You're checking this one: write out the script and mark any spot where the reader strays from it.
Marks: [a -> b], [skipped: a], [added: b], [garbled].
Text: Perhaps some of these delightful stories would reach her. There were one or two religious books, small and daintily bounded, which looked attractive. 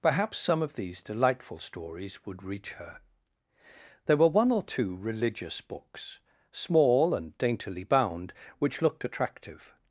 Perhaps some of these delightful stories would reach her. There were one or two religious books, small and daintily [bounded, -> bound] which looked attractive.